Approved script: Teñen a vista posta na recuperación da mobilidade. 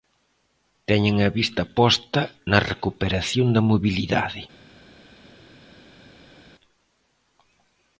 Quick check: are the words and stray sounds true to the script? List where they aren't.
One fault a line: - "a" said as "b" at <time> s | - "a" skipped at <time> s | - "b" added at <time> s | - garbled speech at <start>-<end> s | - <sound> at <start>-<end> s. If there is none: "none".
none